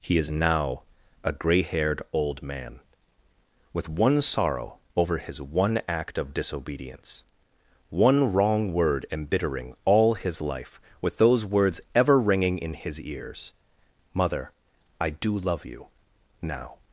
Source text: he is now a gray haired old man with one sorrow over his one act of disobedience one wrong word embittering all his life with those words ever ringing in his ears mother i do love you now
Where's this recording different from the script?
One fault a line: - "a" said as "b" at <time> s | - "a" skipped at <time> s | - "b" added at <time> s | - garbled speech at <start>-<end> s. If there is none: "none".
none